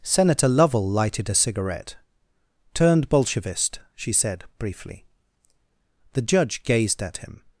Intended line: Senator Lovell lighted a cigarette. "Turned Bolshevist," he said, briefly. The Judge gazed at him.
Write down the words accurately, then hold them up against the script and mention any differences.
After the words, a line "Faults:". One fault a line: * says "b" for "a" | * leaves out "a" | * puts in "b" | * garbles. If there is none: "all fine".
Senator Lovell lighted a cigarette. "Turned Bolshevist," she said, briefly. The Judge gazed at him.
Faults:
* says "she" for "he"